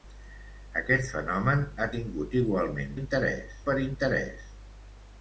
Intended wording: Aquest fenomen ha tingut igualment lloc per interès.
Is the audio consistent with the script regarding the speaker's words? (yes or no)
no